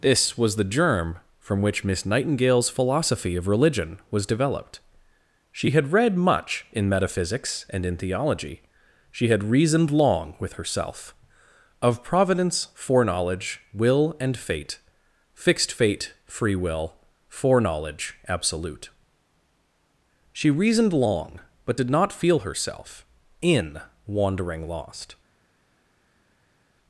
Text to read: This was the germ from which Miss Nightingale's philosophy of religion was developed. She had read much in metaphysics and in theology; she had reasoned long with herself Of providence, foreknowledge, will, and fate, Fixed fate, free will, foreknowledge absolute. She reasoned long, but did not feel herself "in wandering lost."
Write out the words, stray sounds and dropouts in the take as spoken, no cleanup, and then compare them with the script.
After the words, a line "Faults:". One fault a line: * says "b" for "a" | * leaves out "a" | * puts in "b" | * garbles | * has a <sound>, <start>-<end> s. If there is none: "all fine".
This was the germ from which Miss Nightingale's philosophy of religion was developed. She had read much in metaphysics and in theology; she had reasoned long with herself Of providence, foreknowledge, will, and fate, Fixed fate, free will, foreknowledge absolute. She reasoned long, but did not feel herself "in wandering lost."
Faults:
all fine